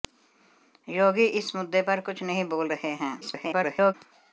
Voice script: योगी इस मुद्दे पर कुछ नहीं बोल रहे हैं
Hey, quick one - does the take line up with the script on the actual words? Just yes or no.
no